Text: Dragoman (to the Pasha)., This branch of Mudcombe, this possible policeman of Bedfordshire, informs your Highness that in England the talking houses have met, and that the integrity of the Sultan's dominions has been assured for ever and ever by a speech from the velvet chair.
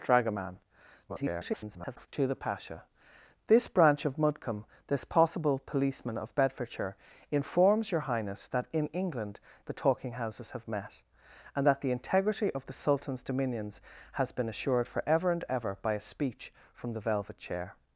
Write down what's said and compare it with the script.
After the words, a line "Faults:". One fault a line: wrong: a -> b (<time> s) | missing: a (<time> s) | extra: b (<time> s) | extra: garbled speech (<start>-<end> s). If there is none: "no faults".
Dragoman [garbled] (to the Pasha)., This branch of Mudcombe, this possible policeman of Bedfordshire, informs your Highness that in England the talking houses have met, and that the integrity of the Sultan's dominions has been assured for ever and ever by a speech from the velvet chair.
Faults:
extra: garbled speech (1.1-2.1 s)